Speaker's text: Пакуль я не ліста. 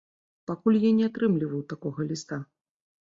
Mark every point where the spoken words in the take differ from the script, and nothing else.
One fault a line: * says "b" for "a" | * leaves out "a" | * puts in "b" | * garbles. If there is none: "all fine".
* puts in "атрымліваў такога"